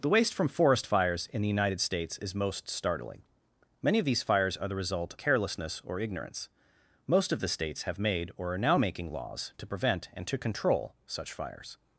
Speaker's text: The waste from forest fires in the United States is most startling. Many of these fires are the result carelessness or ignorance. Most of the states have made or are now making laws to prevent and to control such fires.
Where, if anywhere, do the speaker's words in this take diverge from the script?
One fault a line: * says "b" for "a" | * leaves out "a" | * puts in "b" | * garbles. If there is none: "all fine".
all fine